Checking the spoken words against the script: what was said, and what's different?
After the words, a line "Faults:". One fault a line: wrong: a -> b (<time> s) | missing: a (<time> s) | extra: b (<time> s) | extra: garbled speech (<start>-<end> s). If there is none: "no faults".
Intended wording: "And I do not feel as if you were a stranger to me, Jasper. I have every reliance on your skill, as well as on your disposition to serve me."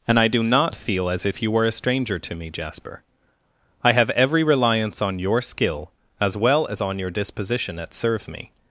"And I do not feel as if you were a stranger to me, Jasper. I have every reliance on your skill, as well as on your disposition at serve me."
Faults:
wrong: to -> at (7.8 s)